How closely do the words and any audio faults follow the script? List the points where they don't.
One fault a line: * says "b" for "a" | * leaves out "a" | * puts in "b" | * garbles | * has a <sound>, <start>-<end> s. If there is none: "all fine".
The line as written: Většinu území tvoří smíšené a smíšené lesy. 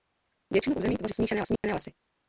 * has a dropout, 1.6-1.6 s